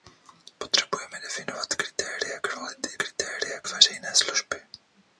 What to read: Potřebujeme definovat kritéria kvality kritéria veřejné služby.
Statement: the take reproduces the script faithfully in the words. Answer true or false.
true